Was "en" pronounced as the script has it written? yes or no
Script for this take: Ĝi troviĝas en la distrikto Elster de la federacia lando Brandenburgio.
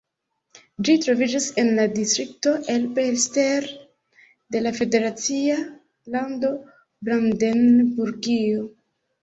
yes